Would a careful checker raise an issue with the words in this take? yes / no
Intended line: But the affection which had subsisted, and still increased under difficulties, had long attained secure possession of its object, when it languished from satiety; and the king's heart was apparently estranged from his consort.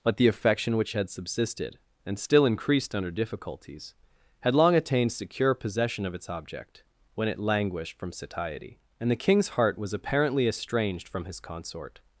no